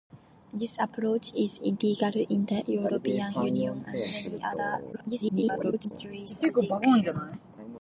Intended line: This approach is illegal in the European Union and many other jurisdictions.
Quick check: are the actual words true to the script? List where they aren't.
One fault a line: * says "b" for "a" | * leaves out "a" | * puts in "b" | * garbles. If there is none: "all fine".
* garbles